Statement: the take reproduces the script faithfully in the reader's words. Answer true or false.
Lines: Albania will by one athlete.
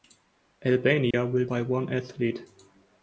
true